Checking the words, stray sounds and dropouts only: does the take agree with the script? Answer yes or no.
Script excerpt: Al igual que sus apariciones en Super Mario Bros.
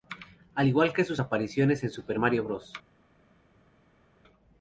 yes